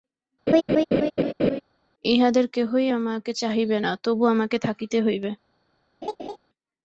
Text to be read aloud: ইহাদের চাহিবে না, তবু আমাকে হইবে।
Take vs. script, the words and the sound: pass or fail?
fail